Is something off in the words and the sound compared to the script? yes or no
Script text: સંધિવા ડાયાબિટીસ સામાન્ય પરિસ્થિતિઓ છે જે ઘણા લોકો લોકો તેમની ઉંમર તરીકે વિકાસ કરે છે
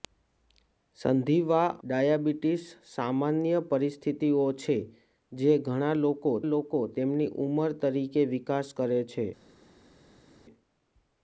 no